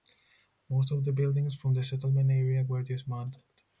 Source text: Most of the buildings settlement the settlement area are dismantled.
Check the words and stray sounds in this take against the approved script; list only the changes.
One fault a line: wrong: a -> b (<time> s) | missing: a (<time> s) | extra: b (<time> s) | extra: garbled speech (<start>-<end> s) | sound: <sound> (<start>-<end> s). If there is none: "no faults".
wrong: settlement -> from (1.5 s)
wrong: are -> were (2.6 s)